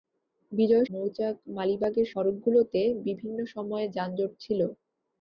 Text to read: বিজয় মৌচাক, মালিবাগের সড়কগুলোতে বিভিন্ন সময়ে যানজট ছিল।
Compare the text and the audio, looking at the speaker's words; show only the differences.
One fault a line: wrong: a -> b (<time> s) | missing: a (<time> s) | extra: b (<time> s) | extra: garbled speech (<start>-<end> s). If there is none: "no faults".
no faults